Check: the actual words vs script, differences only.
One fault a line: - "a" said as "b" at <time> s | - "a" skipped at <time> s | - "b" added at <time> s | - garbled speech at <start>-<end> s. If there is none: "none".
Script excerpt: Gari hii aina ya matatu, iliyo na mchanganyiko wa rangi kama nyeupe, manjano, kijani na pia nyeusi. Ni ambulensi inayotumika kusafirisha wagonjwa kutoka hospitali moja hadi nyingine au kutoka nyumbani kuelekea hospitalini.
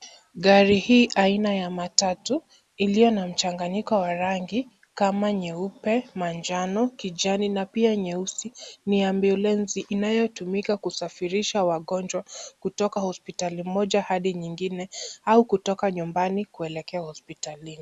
none